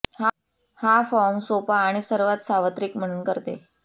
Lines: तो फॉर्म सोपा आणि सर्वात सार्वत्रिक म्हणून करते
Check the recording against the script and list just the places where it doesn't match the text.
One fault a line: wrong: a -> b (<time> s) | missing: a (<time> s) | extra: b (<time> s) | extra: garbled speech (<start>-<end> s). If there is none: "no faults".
wrong: तो -> हा (0.8 s)